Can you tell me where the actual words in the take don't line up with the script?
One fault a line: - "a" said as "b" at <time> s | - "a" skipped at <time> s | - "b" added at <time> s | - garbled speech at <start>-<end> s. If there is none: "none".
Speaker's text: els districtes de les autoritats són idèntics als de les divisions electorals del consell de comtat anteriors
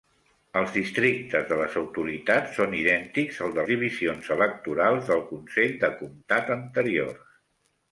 - "les" skipped at 3.7 s